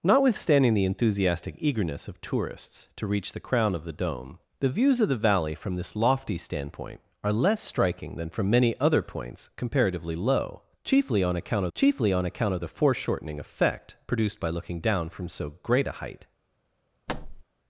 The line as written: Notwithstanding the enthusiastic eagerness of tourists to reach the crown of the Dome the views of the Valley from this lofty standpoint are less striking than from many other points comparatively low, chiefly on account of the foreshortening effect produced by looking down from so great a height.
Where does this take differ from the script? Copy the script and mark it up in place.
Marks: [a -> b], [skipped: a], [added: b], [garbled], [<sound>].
Notwithstanding the enthusiastic eagerness of tourists to reach the crown of the Dome the views of the Valley from this lofty standpoint are less striking than from many other points comparatively low, chiefly on account [added: chiefly on account] of the foreshortening effect produced by looking down from so great a height. [thud]